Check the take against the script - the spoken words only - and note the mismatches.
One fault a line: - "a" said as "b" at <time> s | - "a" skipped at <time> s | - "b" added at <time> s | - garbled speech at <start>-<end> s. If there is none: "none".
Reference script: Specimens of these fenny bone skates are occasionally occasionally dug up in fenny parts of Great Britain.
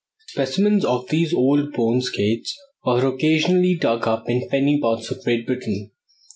- "fenny" said as "old" at 1.3 s
- "occasionally" skipped at 3.8 s